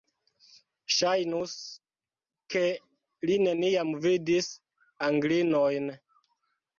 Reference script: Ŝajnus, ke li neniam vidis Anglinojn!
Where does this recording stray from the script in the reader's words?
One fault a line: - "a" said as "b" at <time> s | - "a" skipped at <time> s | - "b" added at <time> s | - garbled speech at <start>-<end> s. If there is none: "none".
none